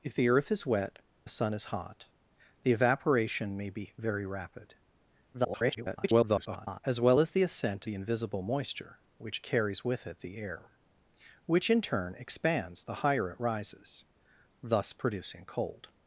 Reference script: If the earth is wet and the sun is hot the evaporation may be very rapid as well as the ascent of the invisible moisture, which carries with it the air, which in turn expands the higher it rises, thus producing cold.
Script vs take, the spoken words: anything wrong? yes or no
yes